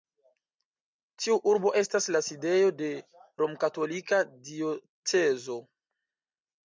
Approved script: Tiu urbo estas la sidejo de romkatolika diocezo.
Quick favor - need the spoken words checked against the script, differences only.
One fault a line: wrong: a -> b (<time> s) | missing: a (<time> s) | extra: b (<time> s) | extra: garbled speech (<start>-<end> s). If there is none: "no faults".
no faults